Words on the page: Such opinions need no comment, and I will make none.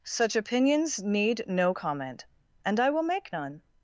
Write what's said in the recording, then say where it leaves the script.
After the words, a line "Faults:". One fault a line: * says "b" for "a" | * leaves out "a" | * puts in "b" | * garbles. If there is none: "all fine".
Such opinions need no comment, and I will make none.
Faults:
all fine